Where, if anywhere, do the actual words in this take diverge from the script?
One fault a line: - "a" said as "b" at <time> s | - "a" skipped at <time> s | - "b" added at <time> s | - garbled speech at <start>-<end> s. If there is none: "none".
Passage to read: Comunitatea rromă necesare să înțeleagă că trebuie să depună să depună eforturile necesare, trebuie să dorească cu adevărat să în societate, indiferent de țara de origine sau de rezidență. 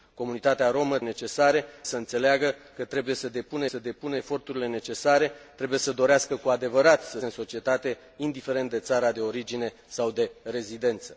none